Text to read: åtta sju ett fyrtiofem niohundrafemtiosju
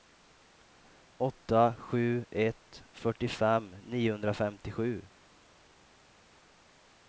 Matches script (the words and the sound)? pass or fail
pass